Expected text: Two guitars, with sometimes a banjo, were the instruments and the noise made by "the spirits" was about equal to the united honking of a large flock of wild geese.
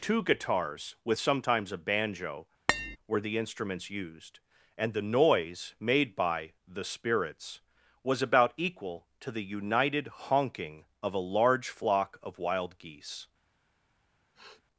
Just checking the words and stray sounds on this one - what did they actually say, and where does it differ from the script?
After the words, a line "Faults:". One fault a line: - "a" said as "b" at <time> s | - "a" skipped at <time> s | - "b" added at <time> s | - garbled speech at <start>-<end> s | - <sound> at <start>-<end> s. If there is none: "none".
Two guitars, with sometimes a banjo, were the instruments used, and the noise made by "the spirits" was about equal to the united honking of a large flock of wild geese.
Faults:
- tap at 2.7-3.0 s
- "used" added at 3.9 s
- sniff at 14.3-14.6 s